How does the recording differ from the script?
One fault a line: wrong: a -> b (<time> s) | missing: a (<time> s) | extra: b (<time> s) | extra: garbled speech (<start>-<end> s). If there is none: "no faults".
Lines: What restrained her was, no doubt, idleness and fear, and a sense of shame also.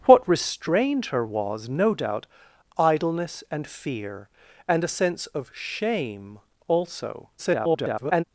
extra: garbled speech (7.4-8.2 s)